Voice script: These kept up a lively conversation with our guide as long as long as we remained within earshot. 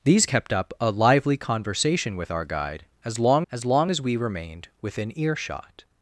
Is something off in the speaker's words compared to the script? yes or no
no